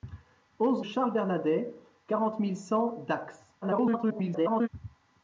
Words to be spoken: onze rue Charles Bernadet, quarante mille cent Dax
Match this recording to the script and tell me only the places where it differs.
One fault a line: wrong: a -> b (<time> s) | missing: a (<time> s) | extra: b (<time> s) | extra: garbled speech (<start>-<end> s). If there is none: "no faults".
missing: rue (0.8 s)
extra: garbled speech (3.6-4.7 s)